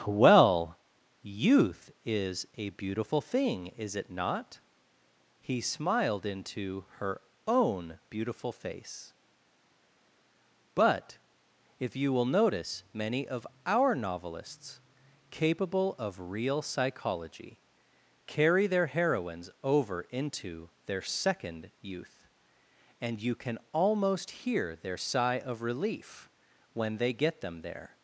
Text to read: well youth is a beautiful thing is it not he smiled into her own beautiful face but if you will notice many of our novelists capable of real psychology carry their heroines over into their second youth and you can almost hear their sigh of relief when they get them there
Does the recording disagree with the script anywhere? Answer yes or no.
no